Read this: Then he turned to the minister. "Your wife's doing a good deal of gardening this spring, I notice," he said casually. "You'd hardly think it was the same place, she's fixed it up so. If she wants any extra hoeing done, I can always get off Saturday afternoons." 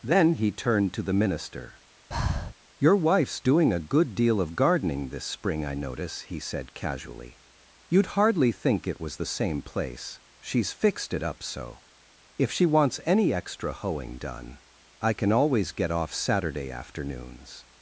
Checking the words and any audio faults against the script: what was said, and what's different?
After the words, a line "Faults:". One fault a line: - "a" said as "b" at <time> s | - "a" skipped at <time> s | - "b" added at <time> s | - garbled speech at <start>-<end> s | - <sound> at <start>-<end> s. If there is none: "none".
Then he turned to the minister. "Your wife's doing a good deal of gardening this spring, I notice," he said casually. "You'd hardly think it was the same place, she's fixed it up so. If she wants any extra hoeing done, I can always get off Saturday afternoons."
Faults:
- breath at 2.1-2.5 s